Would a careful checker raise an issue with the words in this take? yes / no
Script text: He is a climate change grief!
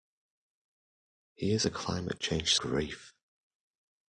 no